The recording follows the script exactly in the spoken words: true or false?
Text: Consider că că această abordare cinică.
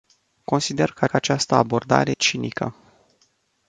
true